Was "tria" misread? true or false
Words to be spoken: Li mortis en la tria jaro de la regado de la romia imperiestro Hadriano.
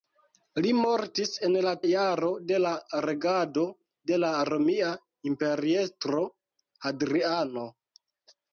true